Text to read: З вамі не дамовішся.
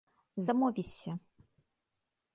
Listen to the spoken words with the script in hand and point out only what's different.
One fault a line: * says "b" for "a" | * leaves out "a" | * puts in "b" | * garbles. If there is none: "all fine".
* leaves out "вамі не"